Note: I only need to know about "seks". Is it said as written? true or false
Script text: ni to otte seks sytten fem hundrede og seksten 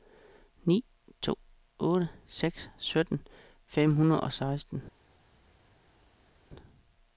true